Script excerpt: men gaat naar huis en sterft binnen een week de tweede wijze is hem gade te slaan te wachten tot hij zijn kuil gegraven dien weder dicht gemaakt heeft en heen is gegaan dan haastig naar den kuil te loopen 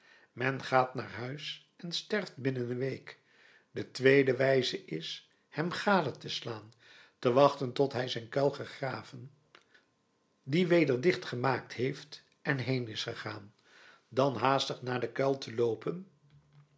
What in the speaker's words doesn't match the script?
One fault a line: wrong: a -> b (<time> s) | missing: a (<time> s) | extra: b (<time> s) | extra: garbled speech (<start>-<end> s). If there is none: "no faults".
no faults